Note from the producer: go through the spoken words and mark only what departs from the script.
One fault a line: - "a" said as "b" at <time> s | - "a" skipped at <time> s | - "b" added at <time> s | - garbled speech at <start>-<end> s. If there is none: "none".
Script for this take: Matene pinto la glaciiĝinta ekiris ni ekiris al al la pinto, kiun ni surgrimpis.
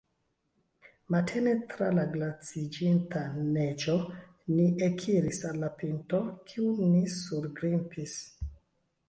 - "pinto" said as "tra" at 1.7 s
- "ekiris" said as "neĝo" at 3.6 s
- "al" skipped at 5.6 s